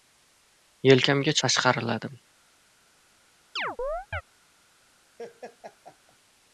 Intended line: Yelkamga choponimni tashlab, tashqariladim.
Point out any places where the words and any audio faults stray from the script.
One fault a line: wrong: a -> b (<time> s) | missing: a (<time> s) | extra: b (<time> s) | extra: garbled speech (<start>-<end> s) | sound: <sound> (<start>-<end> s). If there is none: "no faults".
missing: choponimni tashlab (1.4 s)
sound: chirp (3.6-4.2 s)
sound: laugh (5.2-6.2 s)